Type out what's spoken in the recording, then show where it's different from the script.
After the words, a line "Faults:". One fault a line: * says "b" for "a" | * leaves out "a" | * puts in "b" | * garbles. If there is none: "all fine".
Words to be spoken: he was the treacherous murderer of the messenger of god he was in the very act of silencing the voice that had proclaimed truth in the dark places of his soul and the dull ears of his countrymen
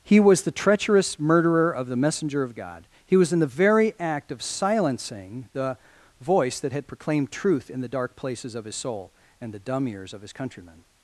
he was the treacherous murderer of the messenger of god he was in the very act of silencing the voice that had proclaimed truth in the dark places of his soul and the dumb ears of his countrymen
Faults:
* says "dumb" for "dull"